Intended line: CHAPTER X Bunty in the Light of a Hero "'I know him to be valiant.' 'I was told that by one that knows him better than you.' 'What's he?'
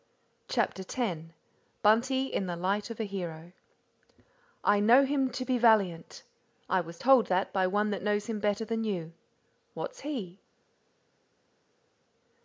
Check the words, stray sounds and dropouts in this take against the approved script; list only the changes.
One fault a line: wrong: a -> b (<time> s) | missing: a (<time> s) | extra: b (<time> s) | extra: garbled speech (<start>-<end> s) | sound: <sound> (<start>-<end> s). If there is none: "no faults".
no faults